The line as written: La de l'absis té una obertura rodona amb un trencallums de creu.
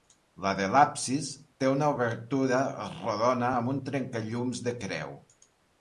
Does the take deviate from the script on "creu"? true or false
false